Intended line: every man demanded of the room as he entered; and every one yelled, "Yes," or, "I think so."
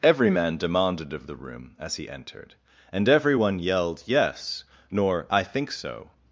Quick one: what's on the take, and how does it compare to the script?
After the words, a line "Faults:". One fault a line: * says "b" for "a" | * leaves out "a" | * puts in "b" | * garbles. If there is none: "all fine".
every man demanded of the room as he entered; and every one yelled, "Yes," nor, "I think so."
Faults:
* says "nor" for "or"